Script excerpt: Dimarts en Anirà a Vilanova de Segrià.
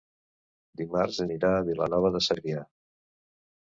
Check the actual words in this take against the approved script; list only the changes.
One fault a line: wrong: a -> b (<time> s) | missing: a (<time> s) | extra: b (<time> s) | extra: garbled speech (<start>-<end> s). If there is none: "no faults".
no faults